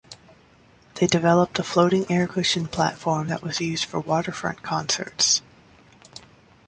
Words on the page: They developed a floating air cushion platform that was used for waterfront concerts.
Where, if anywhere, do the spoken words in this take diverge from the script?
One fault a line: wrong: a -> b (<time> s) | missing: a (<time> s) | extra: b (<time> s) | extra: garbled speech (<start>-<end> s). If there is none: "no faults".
no faults